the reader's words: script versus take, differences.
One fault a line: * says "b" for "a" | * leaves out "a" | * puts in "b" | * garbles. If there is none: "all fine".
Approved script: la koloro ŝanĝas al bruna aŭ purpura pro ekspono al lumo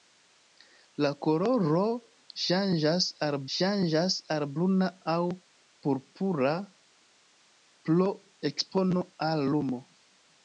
* puts in "ŝanĝas al"